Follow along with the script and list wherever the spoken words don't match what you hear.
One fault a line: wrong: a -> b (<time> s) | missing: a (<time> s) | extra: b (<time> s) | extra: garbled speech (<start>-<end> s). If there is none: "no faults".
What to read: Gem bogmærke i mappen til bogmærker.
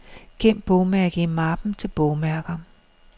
no faults